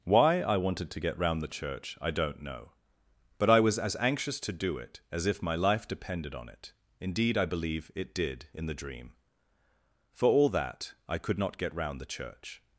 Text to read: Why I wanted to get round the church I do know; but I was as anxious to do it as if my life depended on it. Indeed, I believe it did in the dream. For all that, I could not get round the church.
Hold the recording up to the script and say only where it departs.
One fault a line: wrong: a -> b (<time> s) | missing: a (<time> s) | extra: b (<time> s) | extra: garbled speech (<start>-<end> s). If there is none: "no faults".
wrong: do -> don't (2.1 s)